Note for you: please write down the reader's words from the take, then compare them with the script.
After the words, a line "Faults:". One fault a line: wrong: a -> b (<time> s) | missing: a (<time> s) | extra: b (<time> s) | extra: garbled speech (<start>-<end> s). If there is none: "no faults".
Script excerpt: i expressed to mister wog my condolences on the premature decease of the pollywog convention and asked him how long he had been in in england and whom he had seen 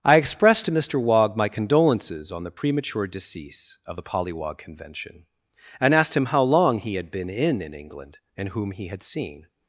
i expressed to mister wog my condolences on the premature decease of the pollywog convention and asked him how long he had been in in england and whom he had seen
Faults:
no faults